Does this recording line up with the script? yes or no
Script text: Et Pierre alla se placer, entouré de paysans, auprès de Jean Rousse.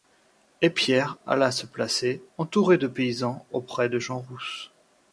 yes